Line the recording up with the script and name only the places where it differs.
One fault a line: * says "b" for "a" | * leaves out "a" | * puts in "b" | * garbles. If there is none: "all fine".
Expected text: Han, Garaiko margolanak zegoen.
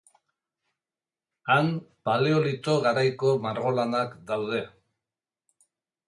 * puts in "Paleolito"
* says "daude" for "zegoen"